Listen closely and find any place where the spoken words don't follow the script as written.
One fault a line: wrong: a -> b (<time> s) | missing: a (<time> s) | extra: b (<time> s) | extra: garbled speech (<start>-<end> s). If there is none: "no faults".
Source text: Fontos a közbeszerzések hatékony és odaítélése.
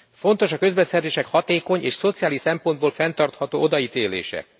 extra: szociális szempontból fenntartható (1.9 s)